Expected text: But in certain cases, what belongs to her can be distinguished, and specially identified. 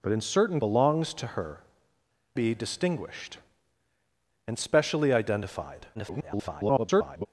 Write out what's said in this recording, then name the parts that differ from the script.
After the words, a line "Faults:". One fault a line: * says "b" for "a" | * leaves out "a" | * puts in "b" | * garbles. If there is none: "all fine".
But in certain belongs to her be distinguished, and specially identified. [garbled]
Faults:
* leaves out "cases what"
* leaves out "can"
* garbles